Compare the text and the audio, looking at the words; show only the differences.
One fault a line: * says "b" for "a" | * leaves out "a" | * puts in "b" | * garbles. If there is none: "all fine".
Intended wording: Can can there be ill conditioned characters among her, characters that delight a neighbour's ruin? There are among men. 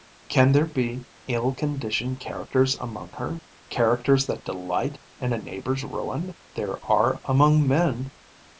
* leaves out "can"
* puts in "in"